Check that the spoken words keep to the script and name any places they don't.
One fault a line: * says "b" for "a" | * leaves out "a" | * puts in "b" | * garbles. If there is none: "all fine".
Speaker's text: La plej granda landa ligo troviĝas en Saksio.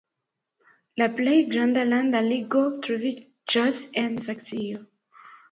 all fine